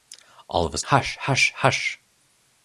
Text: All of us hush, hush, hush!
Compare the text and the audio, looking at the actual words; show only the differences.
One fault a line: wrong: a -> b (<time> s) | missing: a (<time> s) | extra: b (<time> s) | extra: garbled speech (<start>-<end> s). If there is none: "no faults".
no faults